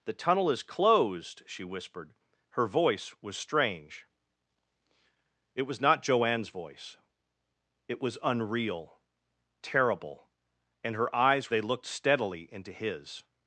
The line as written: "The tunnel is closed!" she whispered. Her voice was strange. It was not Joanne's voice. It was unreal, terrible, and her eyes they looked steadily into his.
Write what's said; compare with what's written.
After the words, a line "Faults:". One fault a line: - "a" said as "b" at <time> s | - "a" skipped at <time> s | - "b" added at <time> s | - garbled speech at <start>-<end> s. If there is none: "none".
"The tunnel is closed!" she whispered. Her voice was strange. It was not Joanne's voice. It was unreal, terrible, and her eyes they looked steadily into his.
Faults:
none